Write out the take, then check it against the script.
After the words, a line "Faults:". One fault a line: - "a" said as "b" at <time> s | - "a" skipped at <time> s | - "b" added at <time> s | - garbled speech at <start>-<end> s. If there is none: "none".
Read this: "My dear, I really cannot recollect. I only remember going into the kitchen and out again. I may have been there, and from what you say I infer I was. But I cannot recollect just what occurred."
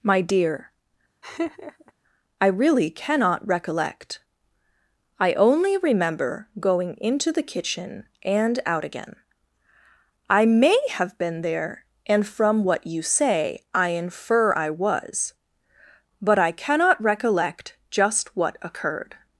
"My dear, I really cannot recollect. I only remember going into the kitchen and out again. I may have been there, and from what you say I infer I was. But I cannot recollect just what occurred."
Faults:
none